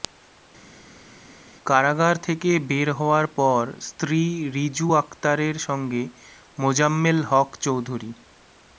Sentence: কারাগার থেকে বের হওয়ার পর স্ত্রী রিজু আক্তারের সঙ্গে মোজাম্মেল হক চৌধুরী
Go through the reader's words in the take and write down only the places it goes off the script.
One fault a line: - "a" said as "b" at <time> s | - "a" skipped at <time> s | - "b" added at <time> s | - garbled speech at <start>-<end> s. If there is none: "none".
none